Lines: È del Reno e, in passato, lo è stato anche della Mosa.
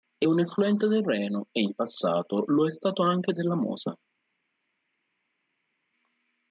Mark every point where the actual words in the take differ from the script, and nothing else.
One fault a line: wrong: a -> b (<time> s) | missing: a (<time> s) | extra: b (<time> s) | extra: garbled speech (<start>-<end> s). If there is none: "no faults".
extra: un effluente (0.2 s)